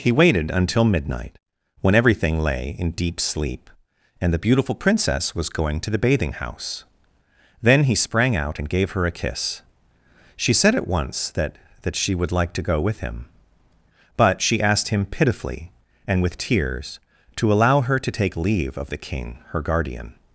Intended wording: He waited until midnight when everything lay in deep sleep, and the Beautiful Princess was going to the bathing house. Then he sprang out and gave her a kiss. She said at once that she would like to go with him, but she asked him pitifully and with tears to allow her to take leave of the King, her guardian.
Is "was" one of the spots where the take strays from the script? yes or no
no